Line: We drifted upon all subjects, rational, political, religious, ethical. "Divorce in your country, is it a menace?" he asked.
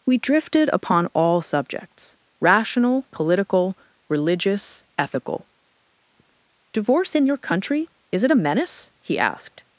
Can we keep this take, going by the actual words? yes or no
yes